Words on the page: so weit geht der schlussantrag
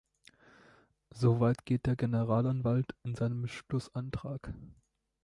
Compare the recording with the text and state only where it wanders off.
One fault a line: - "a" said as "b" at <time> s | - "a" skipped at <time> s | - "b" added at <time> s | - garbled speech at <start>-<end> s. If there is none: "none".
- "generalanwalt in seinem" added at 1.9 s